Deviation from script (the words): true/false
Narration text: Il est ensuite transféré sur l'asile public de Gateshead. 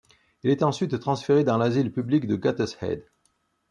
true